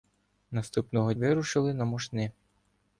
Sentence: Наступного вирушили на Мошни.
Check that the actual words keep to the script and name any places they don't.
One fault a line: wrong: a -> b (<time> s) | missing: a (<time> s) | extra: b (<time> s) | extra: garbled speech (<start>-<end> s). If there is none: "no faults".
no faults